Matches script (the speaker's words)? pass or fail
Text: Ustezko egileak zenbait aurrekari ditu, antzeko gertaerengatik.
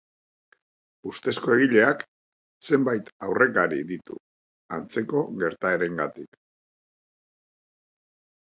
pass